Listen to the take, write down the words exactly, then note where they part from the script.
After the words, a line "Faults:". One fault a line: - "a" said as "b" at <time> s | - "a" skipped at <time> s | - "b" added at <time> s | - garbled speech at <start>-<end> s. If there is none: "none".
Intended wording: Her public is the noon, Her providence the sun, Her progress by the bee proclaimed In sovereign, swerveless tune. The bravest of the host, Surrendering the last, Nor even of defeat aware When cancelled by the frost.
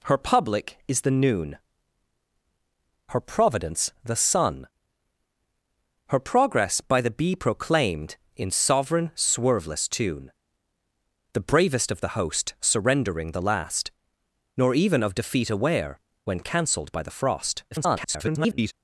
Her public is the noon, Her providence the sun, Her progress by the bee proclaimed In sovereign, swerveless tune. The bravest of the host, Surrendering the last, Nor even of defeat aware When cancelled by the frost. [garbled]
Faults:
- garbled speech at 17.7-18.7 s